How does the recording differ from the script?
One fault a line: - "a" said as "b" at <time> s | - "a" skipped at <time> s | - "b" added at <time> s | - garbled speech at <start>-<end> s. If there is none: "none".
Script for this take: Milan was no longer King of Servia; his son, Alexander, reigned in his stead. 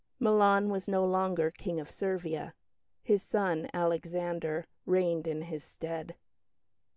none